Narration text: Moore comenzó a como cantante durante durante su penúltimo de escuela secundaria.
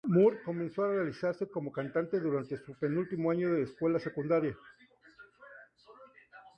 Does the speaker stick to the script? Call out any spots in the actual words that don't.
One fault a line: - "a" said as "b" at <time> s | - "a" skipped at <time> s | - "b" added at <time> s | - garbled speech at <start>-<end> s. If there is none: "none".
- "realizarse" added at 0.9 s
- "durante" skipped at 2.6 s
- "año" added at 3.3 s